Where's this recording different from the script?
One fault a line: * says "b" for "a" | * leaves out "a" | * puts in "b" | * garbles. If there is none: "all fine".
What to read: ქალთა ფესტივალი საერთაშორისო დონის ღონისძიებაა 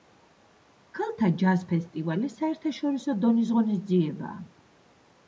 * puts in "ჯაზ"